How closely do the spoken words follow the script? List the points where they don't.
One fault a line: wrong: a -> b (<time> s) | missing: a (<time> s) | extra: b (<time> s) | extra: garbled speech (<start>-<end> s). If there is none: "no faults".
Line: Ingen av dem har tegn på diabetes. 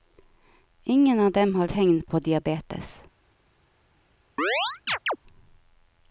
no faults